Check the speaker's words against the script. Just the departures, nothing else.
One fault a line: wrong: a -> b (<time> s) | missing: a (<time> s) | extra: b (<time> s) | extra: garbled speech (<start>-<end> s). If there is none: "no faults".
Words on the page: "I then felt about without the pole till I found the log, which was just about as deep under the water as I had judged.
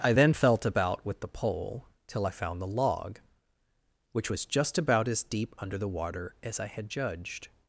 wrong: without -> with (1.0 s)